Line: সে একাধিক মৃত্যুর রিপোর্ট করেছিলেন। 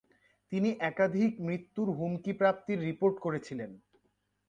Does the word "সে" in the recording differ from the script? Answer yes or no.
yes